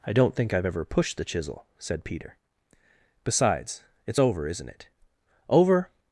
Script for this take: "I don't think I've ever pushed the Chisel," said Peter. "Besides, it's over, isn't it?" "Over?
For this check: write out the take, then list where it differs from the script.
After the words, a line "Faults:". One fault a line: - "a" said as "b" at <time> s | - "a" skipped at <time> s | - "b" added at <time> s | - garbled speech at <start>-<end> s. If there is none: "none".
"I don't think I've ever pushed the Chisel," said Peter. "Besides, it's over, isn't it?" "Over?
Faults:
none